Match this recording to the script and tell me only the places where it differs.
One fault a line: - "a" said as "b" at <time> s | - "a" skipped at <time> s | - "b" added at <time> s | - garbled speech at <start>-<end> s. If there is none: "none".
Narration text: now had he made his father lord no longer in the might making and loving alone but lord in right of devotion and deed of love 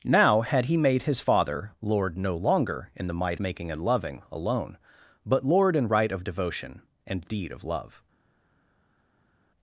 none